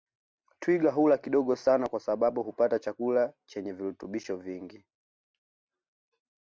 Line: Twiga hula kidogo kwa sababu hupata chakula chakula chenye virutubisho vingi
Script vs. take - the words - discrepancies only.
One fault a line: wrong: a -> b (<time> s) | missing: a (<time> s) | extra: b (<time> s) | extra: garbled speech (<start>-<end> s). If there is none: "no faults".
extra: sana (1.6 s)
missing: chakula (3.3 s)